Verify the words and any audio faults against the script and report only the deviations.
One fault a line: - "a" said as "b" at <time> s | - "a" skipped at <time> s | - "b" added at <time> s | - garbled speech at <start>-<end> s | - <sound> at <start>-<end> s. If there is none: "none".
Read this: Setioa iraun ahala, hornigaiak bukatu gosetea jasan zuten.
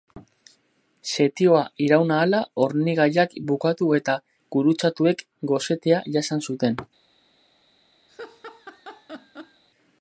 - "eta gurutzatuek" added at 4.0 s
- laugh at 8.1-9.6 s